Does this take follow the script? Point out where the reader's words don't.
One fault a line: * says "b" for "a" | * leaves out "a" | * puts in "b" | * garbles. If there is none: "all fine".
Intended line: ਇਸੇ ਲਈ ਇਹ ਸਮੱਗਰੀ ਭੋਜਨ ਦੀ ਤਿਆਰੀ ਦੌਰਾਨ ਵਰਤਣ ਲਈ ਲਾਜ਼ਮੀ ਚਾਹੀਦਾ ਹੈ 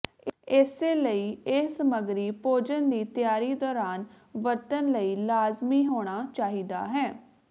* puts in "ਹੋਣਾ"